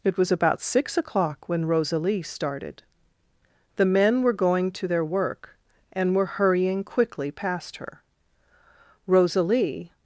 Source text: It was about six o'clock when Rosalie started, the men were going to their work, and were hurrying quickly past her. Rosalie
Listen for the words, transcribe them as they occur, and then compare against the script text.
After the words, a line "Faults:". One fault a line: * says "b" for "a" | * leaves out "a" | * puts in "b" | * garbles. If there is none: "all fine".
It was about six o'clock when Rosalie started, the men were going to their work, and were hurrying quickly past her. Rosalie
Faults:
all fine